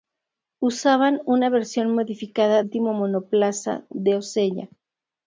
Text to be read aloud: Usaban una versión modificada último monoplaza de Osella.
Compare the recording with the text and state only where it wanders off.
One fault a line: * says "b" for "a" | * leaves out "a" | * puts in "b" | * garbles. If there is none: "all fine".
all fine